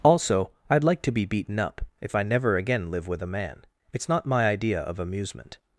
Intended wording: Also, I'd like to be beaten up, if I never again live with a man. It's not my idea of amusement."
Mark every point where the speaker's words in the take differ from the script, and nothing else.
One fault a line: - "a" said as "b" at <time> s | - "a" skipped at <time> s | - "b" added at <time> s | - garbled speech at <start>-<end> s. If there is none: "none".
none